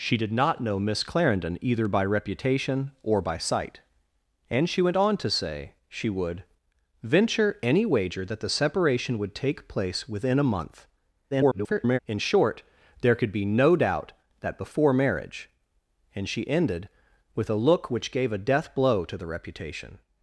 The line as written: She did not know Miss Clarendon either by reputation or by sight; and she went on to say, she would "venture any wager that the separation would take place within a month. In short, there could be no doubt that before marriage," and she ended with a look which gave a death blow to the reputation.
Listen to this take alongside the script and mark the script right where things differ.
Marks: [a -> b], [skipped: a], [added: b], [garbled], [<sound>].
She did not know Miss Clarendon either by reputation or by sight; and she went on to say, she would "venture any wager that the separation would take place within a month. [garbled] In short, there could be no doubt that before marriage," and she ended with a look which gave a death blow to the reputation.